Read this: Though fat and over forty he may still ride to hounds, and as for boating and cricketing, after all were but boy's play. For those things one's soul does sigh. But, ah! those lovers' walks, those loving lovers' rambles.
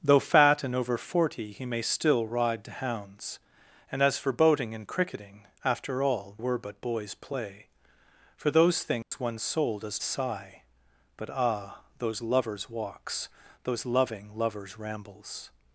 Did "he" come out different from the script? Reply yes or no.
no